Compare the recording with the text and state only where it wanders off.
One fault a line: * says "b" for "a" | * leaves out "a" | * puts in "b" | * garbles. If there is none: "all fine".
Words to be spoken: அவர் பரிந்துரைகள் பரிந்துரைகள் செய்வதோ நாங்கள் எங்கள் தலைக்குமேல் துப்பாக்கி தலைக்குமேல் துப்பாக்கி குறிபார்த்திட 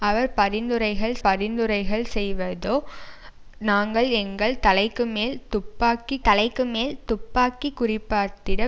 all fine